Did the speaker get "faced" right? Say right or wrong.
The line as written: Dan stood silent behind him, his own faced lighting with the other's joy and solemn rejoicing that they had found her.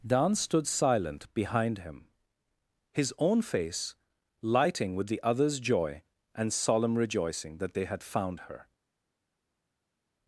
wrong